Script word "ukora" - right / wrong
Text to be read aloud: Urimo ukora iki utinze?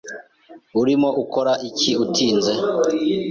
right